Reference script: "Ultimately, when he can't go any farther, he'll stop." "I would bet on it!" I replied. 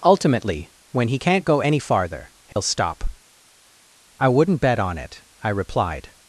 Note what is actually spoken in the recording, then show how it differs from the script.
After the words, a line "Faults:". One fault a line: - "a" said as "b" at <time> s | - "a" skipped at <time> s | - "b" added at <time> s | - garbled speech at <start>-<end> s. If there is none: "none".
"Ultimately, when he can't go any farther, he'll stop." "I wouldn't bet on it!" I replied.
Faults:
- "would" said as "wouldn't" at 4.3 s